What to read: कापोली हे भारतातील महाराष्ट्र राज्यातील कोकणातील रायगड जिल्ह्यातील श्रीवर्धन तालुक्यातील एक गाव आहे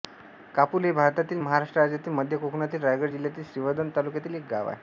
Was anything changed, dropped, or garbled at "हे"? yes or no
no